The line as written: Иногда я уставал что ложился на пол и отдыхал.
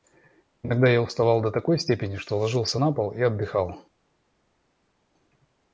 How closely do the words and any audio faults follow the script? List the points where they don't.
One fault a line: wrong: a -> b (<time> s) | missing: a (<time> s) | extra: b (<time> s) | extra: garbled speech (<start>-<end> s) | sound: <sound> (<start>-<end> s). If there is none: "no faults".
extra: до такой степени (1.4 s)